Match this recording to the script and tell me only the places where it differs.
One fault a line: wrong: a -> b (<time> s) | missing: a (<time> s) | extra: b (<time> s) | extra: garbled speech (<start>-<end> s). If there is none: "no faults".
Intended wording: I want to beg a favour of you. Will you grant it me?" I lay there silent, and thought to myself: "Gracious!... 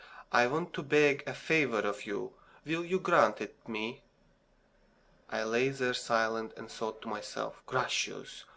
no faults